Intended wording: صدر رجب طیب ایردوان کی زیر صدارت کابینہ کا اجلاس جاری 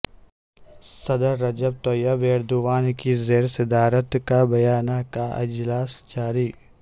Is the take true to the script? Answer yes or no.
yes